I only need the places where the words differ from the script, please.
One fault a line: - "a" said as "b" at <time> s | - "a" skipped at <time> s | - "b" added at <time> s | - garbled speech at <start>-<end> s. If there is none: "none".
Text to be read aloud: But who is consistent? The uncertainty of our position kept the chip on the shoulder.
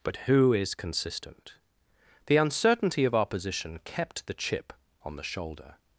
none